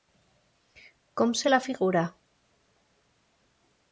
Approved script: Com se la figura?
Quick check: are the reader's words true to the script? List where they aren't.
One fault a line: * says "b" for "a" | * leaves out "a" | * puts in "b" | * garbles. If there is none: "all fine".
all fine